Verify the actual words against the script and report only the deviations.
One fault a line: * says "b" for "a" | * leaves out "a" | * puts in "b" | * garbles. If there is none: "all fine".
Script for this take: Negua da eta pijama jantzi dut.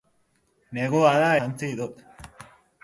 * leaves out "eta pijama"